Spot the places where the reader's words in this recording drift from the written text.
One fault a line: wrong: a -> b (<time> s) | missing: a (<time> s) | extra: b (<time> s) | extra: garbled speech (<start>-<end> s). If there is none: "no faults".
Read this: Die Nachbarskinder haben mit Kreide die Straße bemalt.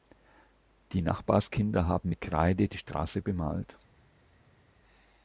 no faults